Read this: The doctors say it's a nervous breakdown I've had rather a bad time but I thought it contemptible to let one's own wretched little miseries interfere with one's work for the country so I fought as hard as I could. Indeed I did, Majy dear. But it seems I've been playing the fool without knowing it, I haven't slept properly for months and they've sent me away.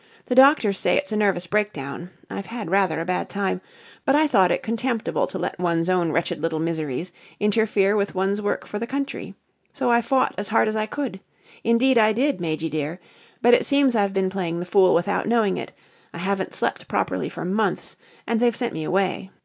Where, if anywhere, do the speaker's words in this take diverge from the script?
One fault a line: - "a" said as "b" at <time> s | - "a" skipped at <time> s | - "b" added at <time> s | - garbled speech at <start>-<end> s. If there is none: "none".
none